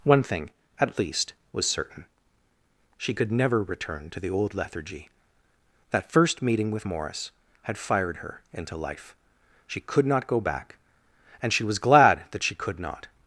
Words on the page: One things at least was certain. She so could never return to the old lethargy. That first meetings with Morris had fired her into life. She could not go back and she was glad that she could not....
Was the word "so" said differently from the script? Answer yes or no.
yes